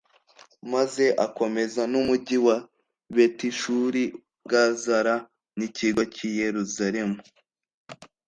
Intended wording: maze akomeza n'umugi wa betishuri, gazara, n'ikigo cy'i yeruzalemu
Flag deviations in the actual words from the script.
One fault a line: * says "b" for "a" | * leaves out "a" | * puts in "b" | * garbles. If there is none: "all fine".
all fine